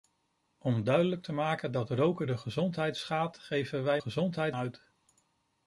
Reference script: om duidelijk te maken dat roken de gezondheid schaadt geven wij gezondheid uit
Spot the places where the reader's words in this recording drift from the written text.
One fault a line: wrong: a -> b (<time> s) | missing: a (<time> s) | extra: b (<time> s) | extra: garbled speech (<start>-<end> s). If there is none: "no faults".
no faults